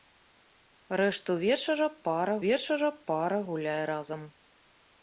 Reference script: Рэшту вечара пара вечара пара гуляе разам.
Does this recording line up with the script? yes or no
yes